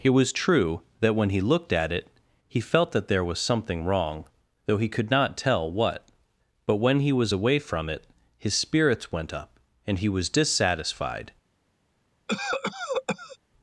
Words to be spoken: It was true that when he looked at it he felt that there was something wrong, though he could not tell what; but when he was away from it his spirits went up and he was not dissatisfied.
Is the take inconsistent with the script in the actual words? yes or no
yes